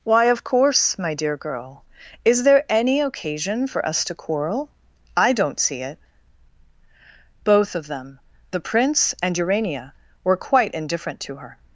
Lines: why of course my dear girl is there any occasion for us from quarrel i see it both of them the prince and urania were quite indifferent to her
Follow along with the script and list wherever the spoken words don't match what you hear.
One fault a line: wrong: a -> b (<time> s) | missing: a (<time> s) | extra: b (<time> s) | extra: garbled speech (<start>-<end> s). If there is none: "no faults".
wrong: from -> to (4.0 s)
extra: don't (5.3 s)